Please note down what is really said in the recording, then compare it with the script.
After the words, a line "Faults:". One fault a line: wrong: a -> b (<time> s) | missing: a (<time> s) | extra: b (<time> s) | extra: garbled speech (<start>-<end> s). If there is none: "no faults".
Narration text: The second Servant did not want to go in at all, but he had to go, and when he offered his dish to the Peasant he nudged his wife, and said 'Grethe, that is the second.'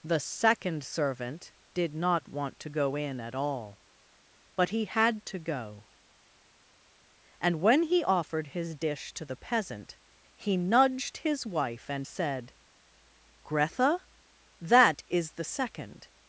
The second Servant did not want to go in at all, but he had to go, and when he offered his dish to the Peasant he nudged his wife, and said 'Grethe, that is the second.'
Faults:
no faults